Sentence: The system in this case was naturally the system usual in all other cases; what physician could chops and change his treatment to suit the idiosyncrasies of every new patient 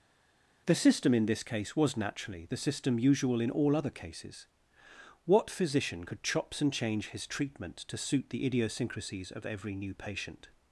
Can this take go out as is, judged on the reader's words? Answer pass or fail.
pass